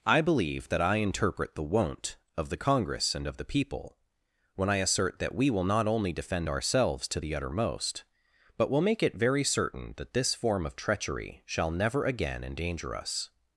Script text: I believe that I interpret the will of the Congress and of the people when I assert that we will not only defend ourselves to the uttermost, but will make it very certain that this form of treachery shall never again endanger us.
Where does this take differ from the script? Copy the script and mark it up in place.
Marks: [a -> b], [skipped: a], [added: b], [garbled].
I believe that I interpret the [will -> won't] of the Congress and of the people when I assert that we will not only defend ourselves to the uttermost, but will make it very certain that this form of treachery shall never again endanger us.